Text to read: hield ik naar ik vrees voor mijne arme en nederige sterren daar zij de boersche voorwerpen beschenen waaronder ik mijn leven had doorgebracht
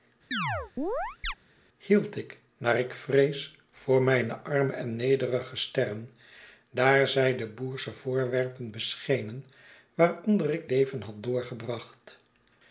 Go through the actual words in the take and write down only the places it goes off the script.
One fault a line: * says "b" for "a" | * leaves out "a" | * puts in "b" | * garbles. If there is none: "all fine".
* leaves out "mijn"